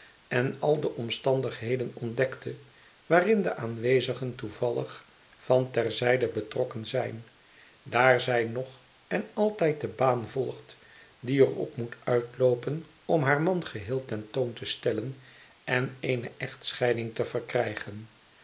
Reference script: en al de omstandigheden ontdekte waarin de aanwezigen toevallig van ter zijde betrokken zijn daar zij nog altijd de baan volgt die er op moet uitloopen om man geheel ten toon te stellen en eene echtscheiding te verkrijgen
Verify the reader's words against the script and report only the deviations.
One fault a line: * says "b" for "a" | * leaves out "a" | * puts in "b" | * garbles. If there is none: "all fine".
* puts in "en"
* puts in "haar"